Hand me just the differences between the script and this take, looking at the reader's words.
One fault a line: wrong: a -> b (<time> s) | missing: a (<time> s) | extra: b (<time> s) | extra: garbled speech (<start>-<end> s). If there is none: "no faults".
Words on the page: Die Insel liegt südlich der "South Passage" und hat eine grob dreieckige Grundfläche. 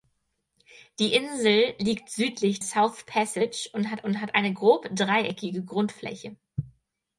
missing: der (2.6 s)
extra: und hat (4.0 s)